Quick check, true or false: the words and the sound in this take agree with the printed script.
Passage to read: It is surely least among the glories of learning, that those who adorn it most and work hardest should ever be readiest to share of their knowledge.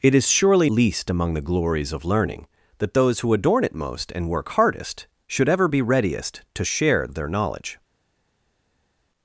true